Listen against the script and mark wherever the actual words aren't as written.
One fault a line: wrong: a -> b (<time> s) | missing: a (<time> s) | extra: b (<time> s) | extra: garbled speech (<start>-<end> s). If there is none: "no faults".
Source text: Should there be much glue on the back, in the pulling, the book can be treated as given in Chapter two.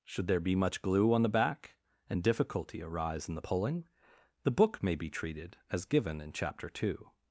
extra: and difficulty arise (2.1 s)
wrong: can -> may (4.8 s)